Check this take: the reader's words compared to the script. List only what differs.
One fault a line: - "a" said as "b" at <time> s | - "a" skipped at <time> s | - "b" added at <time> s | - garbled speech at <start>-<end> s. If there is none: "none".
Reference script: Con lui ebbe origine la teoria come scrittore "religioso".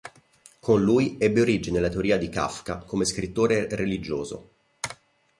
- "di Kafka" added at 2.2 s